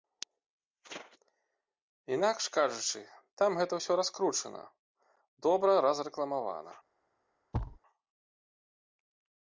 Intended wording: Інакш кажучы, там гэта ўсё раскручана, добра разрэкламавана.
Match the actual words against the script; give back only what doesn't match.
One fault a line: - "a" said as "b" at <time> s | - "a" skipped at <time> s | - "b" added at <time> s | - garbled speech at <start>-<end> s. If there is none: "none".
none